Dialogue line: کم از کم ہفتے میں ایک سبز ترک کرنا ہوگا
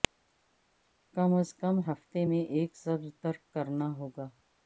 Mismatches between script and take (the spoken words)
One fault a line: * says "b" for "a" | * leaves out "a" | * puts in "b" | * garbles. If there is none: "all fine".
all fine